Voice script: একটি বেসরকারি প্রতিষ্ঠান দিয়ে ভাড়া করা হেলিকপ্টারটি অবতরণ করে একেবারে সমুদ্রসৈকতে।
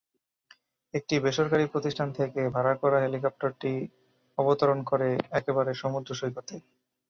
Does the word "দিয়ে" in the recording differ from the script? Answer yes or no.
yes